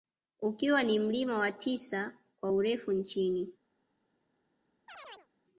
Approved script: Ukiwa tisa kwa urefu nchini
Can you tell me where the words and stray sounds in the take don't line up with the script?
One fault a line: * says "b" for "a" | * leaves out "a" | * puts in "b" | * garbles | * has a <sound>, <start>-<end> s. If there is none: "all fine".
* puts in "ni mlima wa"
* has a chirp, 4.9-5.3 s